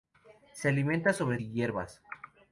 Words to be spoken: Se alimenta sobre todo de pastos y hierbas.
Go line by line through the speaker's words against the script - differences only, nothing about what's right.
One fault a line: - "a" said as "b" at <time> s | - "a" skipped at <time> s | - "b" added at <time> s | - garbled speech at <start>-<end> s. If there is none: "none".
- "todo de pastos" skipped at 1.4 s